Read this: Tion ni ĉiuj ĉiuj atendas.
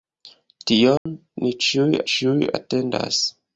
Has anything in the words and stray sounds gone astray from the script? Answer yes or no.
yes